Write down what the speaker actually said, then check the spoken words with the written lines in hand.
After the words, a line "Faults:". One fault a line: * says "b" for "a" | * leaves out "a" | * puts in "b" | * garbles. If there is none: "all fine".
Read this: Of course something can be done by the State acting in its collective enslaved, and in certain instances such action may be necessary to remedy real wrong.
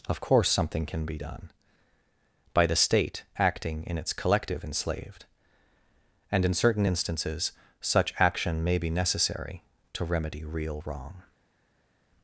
Of course something can be done by the State acting in its collective enslaved, and in certain instances such action may be necessary to remedy real wrong.
Faults:
all fine